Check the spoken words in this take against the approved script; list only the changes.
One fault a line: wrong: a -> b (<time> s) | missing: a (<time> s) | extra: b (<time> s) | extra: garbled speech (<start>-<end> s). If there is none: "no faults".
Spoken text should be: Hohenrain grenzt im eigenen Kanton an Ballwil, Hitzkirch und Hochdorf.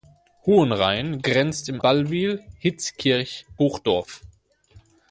missing: eigenen Kanton an (1.8 s)
missing: und (3.4 s)